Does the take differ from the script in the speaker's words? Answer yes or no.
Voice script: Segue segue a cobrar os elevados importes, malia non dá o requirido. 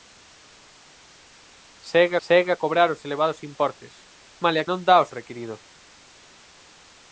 no